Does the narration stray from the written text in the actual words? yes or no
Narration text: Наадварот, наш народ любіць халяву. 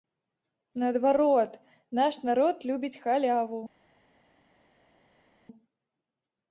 no